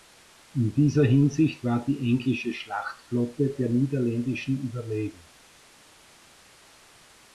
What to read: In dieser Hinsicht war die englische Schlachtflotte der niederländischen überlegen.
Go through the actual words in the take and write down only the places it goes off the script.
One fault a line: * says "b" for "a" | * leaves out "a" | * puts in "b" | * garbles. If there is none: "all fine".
all fine